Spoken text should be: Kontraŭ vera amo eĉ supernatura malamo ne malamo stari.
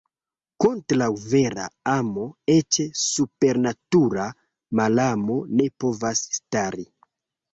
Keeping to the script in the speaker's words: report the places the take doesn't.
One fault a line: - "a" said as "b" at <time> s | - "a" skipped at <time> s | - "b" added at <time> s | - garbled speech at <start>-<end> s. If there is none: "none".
- "malamo" said as "povas" at 5.8 s